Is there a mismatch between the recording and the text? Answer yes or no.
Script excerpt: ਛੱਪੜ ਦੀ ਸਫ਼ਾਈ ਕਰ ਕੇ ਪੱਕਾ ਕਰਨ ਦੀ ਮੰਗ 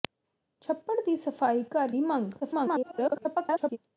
yes